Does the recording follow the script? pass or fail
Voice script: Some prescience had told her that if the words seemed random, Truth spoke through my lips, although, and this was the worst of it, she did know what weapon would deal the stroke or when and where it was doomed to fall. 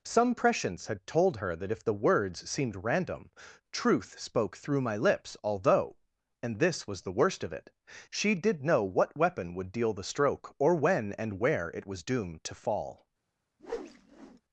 pass